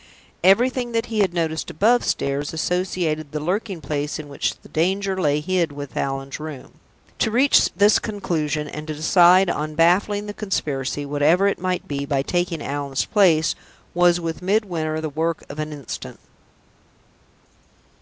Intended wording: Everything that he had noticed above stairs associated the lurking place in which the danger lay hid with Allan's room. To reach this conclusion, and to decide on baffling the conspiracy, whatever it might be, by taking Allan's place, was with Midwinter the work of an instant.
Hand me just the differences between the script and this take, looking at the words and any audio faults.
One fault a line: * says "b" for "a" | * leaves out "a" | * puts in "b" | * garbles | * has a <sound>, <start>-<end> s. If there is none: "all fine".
all fine